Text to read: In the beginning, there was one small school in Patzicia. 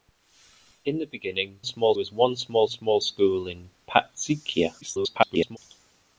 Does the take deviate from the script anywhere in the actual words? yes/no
yes